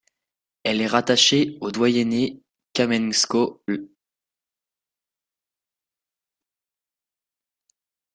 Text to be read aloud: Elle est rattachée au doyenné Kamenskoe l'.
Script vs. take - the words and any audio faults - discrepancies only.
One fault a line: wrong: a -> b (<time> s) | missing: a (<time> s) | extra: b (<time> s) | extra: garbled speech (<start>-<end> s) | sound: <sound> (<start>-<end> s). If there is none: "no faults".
no faults